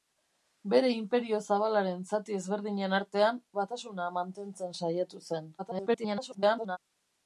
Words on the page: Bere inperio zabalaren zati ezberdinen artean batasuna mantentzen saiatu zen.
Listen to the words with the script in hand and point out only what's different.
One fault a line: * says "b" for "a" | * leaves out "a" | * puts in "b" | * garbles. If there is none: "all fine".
* garbles